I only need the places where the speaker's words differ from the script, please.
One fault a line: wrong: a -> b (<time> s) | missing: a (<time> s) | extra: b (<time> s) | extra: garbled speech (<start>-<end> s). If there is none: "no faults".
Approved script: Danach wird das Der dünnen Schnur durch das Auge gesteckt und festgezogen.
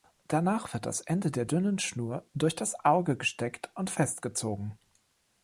extra: Ende (1.0 s)